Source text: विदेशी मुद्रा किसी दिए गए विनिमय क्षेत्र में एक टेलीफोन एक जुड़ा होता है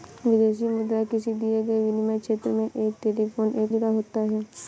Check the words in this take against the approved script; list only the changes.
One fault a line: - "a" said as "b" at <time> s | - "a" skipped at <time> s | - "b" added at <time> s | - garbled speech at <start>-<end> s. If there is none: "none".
none